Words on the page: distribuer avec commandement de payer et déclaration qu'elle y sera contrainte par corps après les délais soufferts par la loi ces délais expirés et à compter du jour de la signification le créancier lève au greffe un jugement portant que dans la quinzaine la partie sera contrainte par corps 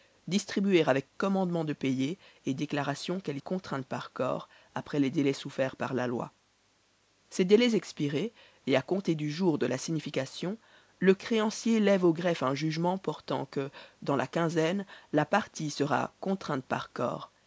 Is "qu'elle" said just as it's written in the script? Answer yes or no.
yes